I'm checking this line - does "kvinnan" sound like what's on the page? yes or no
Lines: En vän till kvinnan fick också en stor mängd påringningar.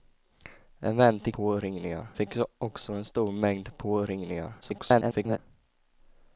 no